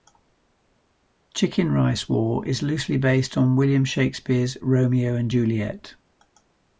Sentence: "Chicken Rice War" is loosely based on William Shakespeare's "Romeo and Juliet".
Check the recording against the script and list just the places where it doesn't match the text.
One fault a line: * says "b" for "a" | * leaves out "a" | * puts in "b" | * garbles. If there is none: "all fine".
all fine